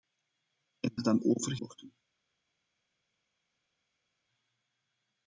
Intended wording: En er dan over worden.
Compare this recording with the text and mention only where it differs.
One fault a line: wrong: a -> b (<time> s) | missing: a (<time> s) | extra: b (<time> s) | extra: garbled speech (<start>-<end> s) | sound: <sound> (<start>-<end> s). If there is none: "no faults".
no faults